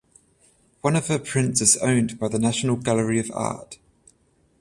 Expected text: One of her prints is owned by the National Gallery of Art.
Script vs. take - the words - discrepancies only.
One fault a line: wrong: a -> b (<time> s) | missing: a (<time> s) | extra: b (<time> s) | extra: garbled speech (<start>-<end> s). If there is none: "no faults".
no faults